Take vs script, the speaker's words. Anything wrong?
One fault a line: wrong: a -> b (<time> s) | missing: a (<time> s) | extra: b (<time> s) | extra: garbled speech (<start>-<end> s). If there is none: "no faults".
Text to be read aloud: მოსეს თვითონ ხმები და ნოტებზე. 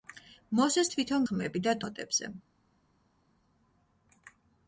no faults